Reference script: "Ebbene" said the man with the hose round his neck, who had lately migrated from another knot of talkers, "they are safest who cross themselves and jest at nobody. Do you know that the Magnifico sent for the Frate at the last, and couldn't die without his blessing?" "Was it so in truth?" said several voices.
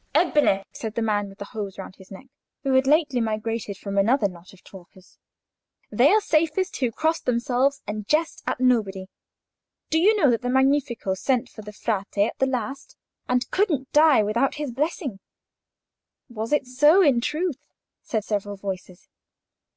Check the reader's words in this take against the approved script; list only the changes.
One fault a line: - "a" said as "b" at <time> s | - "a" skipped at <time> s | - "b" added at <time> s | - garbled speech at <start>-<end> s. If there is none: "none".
none